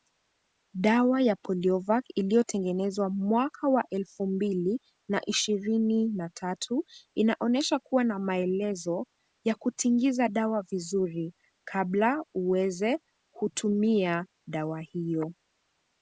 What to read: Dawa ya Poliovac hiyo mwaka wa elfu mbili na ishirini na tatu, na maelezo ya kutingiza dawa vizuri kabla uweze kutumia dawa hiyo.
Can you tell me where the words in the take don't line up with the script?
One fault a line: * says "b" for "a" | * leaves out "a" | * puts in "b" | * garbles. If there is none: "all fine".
* says "iliyotengenezwa" for "hiyo"
* puts in "inaonyesha kuwa"